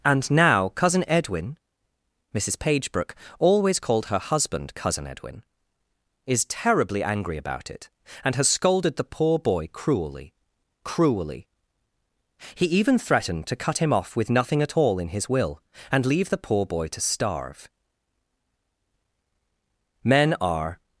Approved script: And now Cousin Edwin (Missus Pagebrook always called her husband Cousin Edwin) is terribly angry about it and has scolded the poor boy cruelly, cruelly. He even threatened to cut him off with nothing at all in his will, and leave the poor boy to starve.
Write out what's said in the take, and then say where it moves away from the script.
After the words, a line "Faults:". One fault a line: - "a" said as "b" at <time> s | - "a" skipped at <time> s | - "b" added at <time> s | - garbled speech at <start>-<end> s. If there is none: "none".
And now Cousin Edwin (Missus Pagebrook always called her husband Cousin Edwin) is terribly angry about it and has scolded the poor boy cruelly, cruelly. He even threatened to cut him off with nothing at all in his will, and leave the poor boy to starve. Men are
Faults:
- "Men are" added at 20.0 s